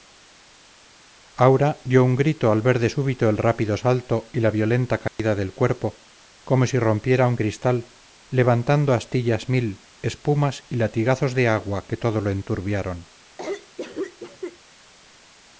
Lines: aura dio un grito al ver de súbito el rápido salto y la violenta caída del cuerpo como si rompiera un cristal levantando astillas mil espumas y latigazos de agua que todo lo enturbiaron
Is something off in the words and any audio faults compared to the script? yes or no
yes